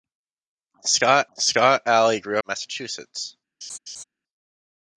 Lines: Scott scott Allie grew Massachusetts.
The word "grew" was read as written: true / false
true